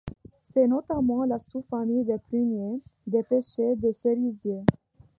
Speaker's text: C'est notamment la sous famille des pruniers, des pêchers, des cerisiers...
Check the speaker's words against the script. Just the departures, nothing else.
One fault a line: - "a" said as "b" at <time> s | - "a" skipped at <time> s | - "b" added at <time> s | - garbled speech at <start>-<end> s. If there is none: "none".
none